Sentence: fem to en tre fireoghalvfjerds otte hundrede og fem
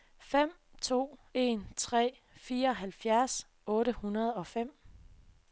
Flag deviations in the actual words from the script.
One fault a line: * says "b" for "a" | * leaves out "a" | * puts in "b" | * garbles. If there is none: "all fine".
all fine